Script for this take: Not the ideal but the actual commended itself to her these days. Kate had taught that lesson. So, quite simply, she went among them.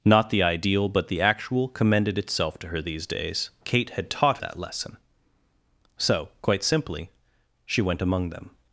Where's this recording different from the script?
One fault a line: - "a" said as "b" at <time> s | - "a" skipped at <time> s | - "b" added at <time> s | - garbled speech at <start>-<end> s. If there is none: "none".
none